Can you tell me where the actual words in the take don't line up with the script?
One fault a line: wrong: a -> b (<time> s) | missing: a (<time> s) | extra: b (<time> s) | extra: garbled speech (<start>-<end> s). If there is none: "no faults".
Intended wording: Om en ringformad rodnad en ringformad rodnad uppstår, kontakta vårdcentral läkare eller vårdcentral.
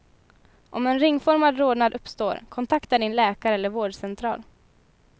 missing: en ringformad rodnad (1.9 s)
wrong: vårdcentral -> din (3.0 s)